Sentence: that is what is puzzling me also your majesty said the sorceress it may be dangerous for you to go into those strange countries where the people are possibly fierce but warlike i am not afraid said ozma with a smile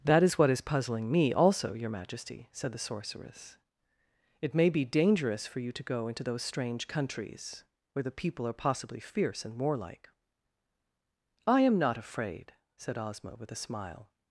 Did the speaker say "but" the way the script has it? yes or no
no